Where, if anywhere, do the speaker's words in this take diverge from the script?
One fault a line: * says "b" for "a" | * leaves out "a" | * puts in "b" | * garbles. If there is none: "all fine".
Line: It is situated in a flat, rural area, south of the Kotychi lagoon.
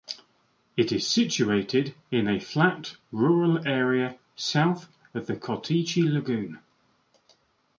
all fine